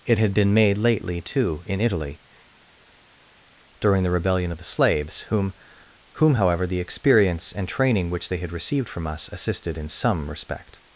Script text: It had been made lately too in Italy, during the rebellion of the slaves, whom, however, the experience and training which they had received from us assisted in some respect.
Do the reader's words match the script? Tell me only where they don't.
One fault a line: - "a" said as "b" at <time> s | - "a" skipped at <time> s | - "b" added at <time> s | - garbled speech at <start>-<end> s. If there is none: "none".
- "whom" added at 6.2 s